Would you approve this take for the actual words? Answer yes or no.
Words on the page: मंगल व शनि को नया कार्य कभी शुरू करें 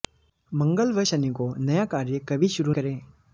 yes